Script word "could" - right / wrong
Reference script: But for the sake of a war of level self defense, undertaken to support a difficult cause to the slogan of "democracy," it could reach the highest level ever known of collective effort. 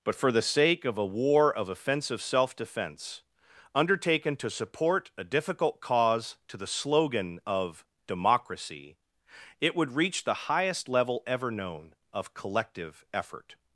wrong